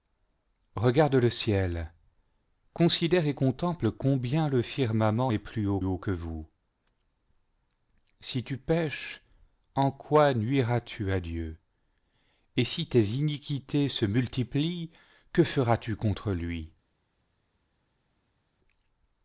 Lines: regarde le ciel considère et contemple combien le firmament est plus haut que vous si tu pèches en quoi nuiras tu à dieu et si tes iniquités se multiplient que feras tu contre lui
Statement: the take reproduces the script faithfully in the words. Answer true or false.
false